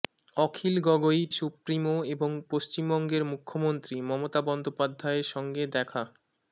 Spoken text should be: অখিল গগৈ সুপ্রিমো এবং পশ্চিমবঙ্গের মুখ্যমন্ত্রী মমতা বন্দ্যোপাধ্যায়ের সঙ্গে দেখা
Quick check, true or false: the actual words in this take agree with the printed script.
true